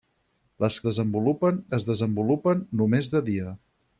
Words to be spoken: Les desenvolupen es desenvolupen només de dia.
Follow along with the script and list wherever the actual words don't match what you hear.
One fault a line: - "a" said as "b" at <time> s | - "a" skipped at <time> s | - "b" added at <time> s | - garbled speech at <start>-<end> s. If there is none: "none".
none